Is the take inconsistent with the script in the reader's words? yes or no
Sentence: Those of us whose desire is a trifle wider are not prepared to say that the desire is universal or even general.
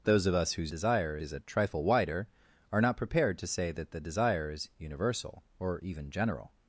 no